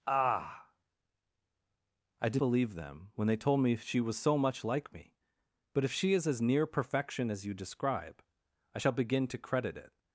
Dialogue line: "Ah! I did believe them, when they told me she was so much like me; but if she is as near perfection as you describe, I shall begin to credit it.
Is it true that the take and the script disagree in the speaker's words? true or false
false